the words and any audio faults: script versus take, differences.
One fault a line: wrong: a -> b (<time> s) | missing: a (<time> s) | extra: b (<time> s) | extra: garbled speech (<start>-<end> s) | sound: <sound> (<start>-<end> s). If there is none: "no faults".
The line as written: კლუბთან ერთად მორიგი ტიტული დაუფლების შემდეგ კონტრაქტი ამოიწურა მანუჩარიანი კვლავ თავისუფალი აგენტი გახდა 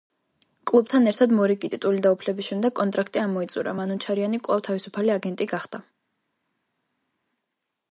no faults